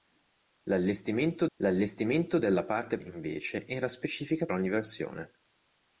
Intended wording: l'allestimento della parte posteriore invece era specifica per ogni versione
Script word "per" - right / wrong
wrong